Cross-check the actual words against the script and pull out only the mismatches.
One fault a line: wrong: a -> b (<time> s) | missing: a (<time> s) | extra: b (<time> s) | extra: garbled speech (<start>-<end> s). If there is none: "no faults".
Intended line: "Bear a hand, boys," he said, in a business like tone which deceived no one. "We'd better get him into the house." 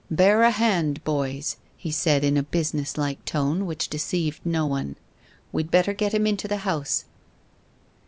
no faults